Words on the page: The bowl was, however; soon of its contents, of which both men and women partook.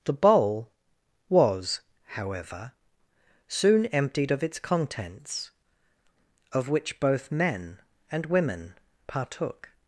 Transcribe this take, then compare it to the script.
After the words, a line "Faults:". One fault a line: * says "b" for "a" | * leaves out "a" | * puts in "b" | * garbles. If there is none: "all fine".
The bowl was, however; soon emptied of its contents, of which both men and women partook.
Faults:
* puts in "emptied"